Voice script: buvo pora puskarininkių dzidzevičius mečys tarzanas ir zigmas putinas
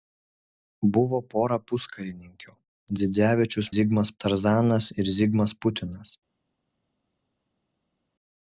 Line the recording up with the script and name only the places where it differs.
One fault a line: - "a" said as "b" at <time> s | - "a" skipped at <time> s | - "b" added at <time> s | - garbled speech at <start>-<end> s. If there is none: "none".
- "mečys" said as "zigmas" at 3.8 s